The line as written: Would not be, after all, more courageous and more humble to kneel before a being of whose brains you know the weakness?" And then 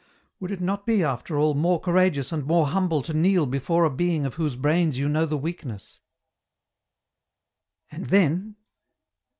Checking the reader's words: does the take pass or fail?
fail